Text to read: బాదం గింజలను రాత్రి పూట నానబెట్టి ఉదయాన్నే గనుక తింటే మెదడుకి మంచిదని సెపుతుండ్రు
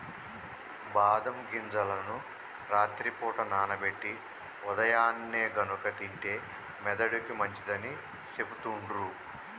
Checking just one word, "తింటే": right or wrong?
right